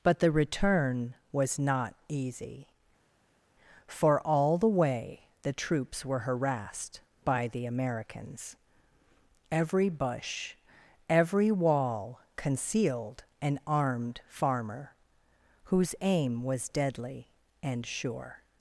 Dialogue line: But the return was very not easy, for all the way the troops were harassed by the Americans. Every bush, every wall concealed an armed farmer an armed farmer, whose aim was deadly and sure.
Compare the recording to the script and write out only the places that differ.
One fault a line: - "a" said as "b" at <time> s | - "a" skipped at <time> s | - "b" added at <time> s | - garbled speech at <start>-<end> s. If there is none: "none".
- "very" skipped at 1.6 s
- "an armed farmer" skipped at 14.9 s